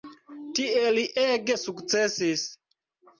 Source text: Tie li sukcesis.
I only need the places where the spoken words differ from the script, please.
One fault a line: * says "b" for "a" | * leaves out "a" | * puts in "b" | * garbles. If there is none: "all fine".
* puts in "ege"